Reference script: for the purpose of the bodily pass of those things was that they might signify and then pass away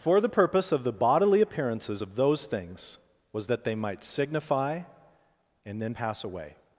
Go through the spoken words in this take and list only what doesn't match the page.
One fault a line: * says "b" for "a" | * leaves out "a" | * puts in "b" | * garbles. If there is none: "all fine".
* says "appearances" for "pass"